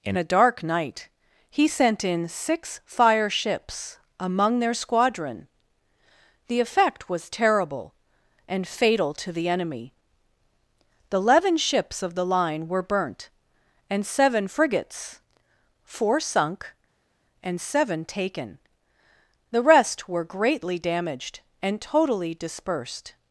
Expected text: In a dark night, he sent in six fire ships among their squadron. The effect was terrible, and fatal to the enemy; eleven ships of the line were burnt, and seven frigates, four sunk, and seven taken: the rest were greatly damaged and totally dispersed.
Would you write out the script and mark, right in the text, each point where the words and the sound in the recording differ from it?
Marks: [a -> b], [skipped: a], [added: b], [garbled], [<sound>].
In a dark night, he sent in six fire ships among their squadron. The effect was terrible, and fatal to the enemy; [added: the] eleven ships of the line were burnt, and seven frigates, four sunk, and seven taken: the rest were greatly damaged and totally dispersed.